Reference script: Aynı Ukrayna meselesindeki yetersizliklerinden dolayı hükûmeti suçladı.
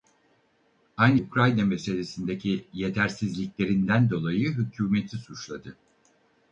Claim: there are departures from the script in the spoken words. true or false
false